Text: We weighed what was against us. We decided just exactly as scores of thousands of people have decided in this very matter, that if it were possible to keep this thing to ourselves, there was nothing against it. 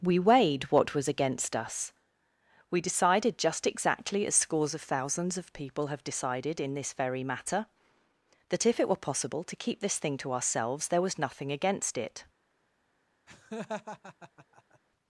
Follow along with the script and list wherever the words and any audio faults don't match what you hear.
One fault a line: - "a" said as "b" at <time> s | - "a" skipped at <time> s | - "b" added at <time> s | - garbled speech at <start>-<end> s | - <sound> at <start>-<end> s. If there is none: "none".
- laugh at 13.3-14.8 s